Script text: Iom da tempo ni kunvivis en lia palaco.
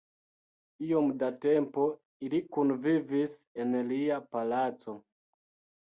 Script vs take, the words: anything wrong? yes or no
yes